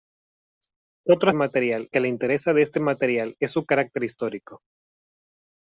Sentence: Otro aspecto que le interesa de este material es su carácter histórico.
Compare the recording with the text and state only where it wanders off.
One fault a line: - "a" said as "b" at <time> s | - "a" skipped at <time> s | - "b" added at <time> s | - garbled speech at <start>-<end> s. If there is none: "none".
- "aspecto" said as "material" at 1.3 s